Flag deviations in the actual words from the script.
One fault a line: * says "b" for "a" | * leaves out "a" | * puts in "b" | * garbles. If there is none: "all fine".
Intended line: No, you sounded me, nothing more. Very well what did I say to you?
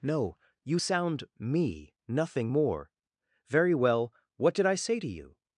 * says "sound" for "sounded"